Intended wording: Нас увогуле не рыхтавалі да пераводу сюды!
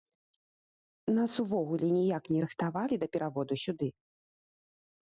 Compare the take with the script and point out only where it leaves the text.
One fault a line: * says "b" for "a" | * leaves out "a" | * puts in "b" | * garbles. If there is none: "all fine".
* puts in "ніяк"